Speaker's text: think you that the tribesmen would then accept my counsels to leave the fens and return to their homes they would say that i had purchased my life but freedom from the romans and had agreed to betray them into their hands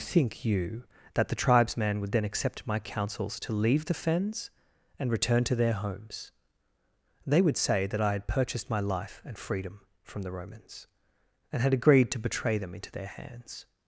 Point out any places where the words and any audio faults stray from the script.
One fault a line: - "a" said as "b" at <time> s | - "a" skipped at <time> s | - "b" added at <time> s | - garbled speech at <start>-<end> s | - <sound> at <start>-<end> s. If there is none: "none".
- "but" said as "and" at 9.2 s